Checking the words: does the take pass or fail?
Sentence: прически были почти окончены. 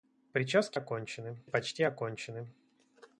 fail